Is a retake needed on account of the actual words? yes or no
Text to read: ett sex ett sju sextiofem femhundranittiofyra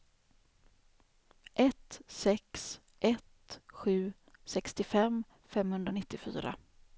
no